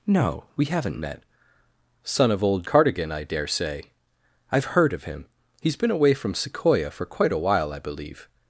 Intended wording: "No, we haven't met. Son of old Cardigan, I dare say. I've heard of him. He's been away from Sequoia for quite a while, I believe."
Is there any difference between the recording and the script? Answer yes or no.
no